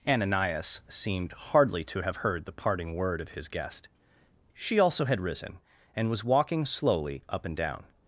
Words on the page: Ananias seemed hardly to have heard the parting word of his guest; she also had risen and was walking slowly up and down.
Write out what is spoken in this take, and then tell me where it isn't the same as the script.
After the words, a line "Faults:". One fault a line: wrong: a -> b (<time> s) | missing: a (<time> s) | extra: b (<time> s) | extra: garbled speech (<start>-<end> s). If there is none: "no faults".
Ananias seemed hardly to have heard the parting word of his guest; she also had risen and was walking slowly up and down.
Faults:
no faults